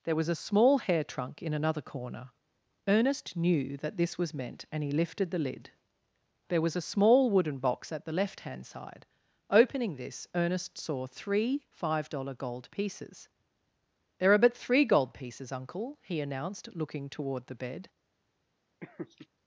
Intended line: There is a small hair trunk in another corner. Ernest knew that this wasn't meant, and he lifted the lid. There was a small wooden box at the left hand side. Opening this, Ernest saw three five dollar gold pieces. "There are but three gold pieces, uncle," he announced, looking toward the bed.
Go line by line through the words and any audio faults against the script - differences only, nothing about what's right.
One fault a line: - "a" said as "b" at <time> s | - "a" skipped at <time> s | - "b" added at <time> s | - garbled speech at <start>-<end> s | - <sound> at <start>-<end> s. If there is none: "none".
- "is" said as "was" at 0.1 s
- "wasn't" said as "was" at 4.2 s
- laugh at 18.8-19.3 s